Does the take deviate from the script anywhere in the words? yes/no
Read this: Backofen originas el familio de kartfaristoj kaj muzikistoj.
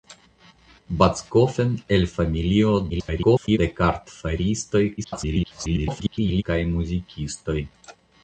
yes